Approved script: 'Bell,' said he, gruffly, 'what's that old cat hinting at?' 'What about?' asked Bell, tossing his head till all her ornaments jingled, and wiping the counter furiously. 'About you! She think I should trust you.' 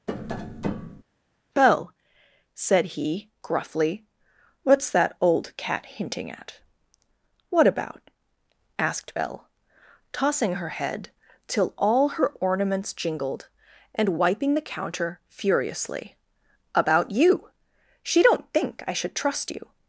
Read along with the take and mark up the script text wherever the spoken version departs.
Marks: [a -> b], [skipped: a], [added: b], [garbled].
'Bell,' said he, gruffly, 'what's that old cat hinting at?' 'What about?' asked Bell, tossing [his -> her] head till all her ornaments jingled, and wiping the counter furiously. 'About you! She [added: don't] think I should trust you.'